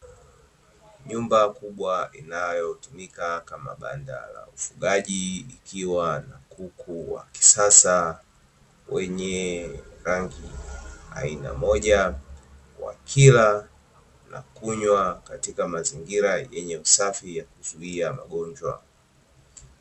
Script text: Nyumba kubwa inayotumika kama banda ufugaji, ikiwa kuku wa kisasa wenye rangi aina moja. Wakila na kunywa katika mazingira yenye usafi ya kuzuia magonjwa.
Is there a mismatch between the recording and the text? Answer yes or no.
yes